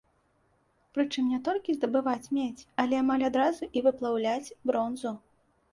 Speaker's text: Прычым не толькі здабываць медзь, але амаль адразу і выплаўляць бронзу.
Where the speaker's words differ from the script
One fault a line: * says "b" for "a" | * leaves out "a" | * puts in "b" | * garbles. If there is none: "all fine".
all fine